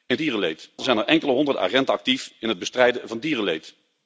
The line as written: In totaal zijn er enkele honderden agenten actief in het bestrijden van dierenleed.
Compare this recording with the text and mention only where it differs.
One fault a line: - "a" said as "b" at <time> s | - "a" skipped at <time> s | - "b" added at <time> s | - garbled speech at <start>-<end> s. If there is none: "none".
- "totaal" said as "dierenleed" at 0.2 s